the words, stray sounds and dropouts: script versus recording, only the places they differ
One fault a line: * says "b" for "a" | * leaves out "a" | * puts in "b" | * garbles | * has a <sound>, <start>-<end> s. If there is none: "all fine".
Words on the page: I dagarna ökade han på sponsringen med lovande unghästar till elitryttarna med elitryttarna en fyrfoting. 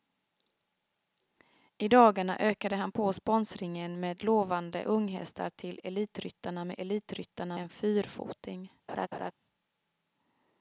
* has a laugh, 8.9-9.3 s